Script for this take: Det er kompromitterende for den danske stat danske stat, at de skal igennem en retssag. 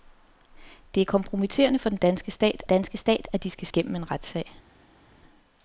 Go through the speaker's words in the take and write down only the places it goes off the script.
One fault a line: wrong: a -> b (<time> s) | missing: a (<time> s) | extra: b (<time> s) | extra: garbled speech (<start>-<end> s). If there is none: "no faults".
no faults